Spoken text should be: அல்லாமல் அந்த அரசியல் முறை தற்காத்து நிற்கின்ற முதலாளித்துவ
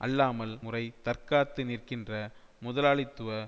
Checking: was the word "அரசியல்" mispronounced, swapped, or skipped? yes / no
yes